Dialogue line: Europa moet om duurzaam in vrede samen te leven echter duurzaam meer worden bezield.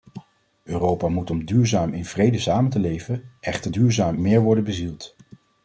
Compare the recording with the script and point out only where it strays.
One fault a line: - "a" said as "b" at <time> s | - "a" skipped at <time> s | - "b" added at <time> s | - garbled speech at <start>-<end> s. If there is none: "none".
none